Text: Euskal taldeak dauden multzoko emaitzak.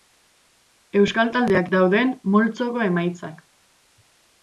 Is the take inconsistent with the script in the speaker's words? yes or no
no